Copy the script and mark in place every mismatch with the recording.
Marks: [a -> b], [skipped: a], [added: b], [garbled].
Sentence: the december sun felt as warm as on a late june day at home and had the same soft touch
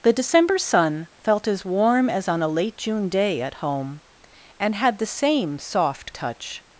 the december sun felt as warm as on a late june day at home and had the same soft touch